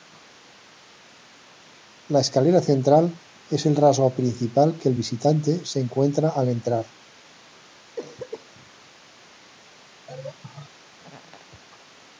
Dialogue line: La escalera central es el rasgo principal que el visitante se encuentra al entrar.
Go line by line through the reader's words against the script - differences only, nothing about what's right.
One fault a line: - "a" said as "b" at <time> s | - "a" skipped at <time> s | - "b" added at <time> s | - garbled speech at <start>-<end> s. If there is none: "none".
none